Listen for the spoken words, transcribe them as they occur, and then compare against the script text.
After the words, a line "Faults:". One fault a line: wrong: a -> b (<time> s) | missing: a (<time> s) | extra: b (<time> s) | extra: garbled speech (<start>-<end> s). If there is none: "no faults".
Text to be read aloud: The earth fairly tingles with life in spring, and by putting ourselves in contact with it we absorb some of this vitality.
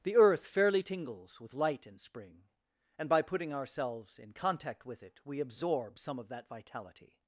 The earth fairly tingles with light in spring, and by putting ourselves in contact with it we absorb some of that vitality.
Faults:
wrong: life -> light (1.5 s)
wrong: this -> that (6.3 s)